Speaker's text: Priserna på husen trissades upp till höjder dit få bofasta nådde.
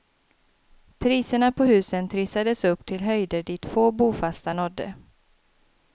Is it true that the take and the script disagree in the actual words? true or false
false